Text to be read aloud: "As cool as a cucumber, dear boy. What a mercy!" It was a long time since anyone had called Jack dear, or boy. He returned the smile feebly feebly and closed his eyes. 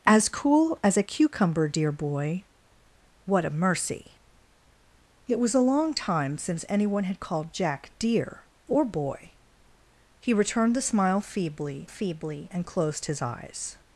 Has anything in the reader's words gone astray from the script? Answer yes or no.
no